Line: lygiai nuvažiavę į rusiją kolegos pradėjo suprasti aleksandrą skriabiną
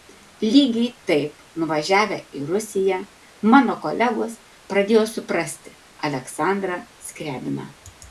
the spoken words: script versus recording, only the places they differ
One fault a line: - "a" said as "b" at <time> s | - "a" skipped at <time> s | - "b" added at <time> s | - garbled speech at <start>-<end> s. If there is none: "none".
- "taip" added at 1.1 s
- "mano" added at 3.5 s